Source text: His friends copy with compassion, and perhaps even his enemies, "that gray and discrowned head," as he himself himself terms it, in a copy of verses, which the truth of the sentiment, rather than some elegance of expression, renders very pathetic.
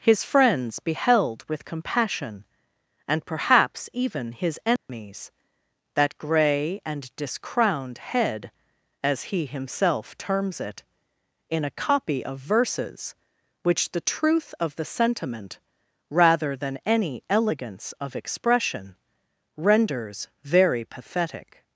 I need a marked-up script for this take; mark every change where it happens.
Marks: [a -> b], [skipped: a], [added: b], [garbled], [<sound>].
His friends [copy -> beheld] with compassion, and perhaps even his enemies, [dropout] "that gray and discrowned head," as he himself [skipped: himself] terms it, in a copy of verses, which the truth of the sentiment, rather than [some -> any] elegance of expression, renders very pathetic.